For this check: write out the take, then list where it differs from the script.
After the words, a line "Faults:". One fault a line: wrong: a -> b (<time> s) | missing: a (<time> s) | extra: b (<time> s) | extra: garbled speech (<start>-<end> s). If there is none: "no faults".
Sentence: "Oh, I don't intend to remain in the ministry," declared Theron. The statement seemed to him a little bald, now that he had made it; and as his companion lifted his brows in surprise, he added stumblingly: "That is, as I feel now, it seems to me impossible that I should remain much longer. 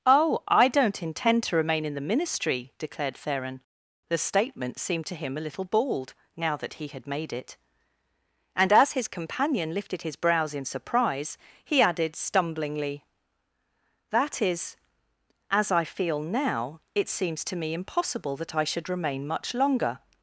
"Oh, I don't intend to remain in the ministry," declared Theron. The statement seemed to him a little bald, now that he had made it; and as his companion lifted his brows in surprise, he added stumblingly: "That is, as I feel now, it seems to me impossible that I should remain much longer.
Faults:
no faults